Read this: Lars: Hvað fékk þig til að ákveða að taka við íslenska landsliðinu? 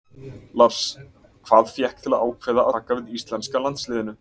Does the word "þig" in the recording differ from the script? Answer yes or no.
yes